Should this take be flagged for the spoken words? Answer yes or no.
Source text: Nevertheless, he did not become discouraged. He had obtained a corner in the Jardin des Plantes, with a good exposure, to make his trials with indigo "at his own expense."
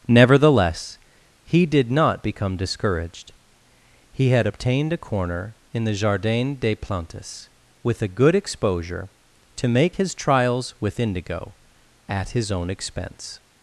no